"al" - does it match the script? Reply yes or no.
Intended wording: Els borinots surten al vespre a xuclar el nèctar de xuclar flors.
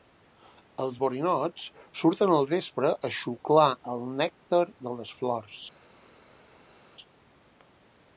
yes